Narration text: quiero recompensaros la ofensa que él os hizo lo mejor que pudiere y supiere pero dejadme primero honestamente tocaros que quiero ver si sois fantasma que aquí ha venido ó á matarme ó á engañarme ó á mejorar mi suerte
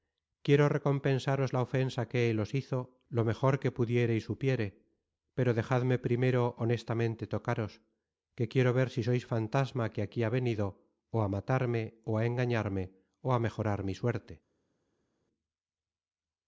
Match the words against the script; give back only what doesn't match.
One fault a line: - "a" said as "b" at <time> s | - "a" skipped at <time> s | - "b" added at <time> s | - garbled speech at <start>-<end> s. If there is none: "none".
none